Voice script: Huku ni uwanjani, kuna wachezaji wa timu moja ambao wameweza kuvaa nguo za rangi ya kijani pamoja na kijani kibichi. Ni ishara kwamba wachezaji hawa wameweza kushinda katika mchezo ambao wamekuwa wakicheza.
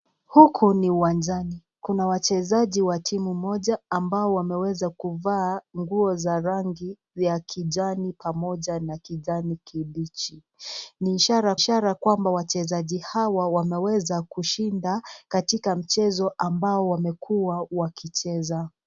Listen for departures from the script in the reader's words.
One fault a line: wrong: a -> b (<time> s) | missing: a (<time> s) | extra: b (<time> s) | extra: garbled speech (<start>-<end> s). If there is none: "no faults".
extra: ishara (11.5 s)